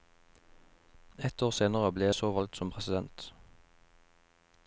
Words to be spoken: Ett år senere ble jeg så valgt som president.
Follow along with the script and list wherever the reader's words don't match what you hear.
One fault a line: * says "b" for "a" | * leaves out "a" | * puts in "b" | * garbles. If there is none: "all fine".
all fine